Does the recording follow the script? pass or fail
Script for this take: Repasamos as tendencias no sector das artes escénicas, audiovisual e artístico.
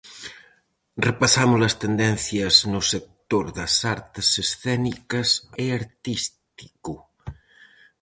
fail